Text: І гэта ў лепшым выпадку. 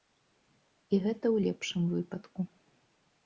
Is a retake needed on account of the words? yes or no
no